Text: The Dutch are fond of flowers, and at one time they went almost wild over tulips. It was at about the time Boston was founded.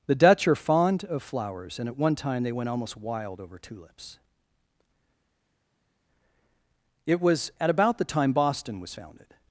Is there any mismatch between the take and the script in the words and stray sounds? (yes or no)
no